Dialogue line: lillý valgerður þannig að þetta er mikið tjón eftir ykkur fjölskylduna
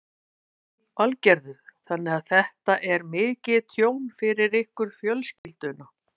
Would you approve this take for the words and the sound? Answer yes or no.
no